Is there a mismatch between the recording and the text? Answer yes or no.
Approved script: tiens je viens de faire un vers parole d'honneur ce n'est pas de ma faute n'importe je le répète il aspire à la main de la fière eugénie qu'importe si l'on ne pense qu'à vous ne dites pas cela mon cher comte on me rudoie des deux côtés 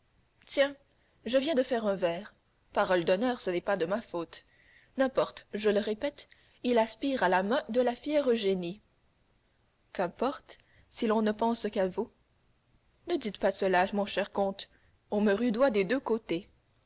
no